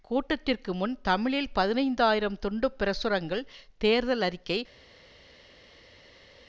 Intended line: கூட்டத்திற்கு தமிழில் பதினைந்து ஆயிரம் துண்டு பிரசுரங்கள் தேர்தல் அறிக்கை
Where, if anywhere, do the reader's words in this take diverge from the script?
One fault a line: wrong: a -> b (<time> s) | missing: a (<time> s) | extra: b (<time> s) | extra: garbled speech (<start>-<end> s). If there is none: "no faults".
extra: முன் (0.7 s)